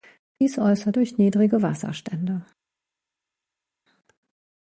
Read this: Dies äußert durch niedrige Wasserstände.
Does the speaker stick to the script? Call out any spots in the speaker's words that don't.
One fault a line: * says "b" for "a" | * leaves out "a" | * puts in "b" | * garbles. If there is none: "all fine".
all fine